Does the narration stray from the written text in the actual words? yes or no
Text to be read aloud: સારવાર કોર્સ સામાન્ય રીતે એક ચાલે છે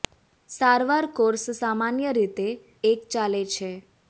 no